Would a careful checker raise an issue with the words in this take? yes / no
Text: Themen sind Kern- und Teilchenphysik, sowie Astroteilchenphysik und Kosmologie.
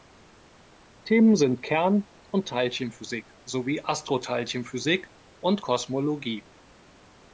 no